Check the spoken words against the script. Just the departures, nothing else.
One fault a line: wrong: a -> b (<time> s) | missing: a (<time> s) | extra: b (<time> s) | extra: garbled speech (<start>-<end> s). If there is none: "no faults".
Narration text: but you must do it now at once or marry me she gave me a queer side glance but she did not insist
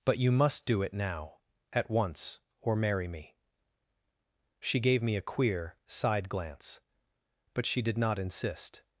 no faults